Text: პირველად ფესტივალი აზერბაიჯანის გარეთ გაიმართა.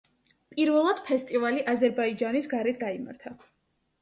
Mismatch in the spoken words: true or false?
false